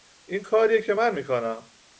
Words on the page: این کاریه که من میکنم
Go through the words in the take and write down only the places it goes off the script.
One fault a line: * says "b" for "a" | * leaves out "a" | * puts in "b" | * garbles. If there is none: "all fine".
all fine